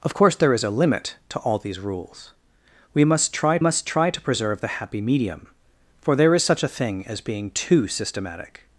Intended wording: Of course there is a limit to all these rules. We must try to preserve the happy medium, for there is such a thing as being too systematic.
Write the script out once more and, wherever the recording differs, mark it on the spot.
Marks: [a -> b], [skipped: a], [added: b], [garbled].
Of course there is a limit to all these rules. We must try [added: must try] to preserve the happy medium, for there is such a thing as being too systematic.